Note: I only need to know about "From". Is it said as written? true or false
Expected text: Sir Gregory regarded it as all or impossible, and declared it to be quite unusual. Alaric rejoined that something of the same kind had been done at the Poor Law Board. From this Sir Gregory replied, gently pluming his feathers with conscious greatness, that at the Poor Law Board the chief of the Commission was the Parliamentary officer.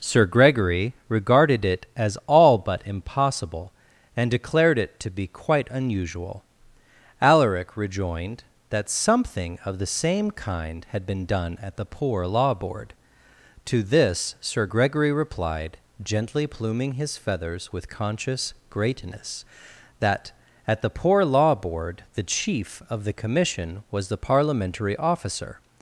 false